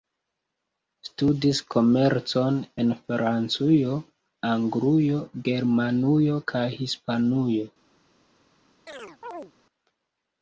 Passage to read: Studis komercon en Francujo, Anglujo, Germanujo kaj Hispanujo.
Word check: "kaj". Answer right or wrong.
right